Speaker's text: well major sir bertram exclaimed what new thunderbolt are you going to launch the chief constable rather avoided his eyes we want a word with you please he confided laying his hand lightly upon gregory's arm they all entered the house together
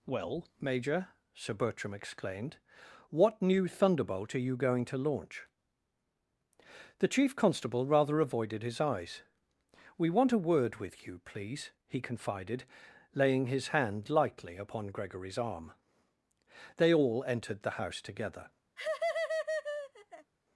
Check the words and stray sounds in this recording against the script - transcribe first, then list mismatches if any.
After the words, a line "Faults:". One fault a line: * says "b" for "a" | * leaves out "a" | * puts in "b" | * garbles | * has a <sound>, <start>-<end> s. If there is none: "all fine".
well major sir bertram exclaimed what new thunderbolt are you going to launch the chief constable rather avoided his eyes we want a word with you please he confided laying his hand lightly upon gregory's arm they all entered the house together
Faults:
* has a laugh, 18.8-20.3 s